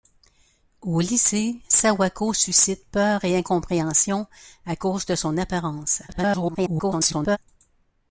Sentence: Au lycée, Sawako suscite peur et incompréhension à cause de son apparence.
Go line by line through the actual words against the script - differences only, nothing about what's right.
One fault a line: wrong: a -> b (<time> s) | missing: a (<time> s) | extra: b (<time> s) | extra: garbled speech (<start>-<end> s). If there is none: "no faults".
extra: garbled speech (6.1-7.4 s)